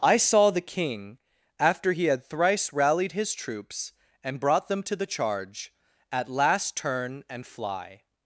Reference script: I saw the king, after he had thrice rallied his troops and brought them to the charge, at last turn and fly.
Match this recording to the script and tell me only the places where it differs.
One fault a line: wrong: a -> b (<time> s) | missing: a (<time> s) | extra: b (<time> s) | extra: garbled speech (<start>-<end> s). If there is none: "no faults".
no faults